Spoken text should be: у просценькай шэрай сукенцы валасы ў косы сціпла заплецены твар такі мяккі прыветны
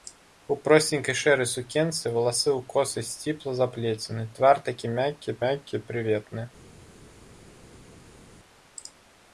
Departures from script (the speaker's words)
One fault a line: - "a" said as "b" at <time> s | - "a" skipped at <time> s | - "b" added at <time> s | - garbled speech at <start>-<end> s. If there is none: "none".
- "мяккі" added at 5.4 s